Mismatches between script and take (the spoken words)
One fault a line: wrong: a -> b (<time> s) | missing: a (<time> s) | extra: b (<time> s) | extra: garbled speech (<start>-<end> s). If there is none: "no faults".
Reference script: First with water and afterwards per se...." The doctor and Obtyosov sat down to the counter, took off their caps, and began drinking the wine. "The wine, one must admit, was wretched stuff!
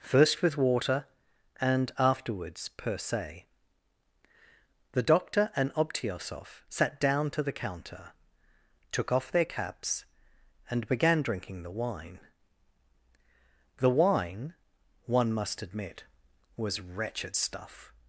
no faults